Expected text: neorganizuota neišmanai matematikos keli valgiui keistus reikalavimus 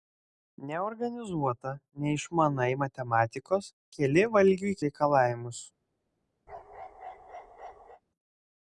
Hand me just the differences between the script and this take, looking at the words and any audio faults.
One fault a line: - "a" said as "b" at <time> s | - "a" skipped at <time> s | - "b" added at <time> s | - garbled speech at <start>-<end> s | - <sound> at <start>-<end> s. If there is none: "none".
- "keistus" skipped at 4.8 s
- bark at 6.5-8.0 s